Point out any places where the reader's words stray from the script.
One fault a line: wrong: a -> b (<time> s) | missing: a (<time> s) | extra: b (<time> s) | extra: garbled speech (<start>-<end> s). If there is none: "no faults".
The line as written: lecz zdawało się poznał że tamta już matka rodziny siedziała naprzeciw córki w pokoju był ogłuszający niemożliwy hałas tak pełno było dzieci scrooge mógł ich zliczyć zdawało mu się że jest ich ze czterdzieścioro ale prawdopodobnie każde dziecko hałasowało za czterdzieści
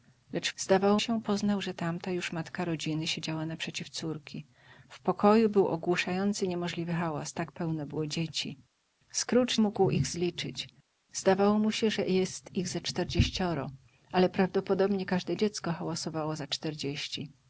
no faults